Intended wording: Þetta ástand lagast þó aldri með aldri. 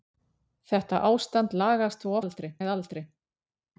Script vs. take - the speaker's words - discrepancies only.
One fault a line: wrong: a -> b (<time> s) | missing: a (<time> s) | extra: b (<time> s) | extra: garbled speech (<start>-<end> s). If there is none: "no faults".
no faults